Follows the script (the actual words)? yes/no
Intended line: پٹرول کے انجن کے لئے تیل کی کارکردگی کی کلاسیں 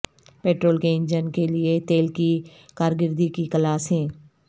yes